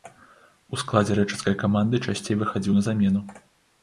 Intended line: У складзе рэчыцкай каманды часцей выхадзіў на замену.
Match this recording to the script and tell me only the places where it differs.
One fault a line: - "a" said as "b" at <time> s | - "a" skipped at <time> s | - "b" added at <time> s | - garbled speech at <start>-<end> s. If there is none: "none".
none